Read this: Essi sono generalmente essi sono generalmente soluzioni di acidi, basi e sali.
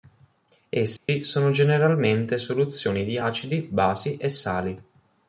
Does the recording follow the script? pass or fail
fail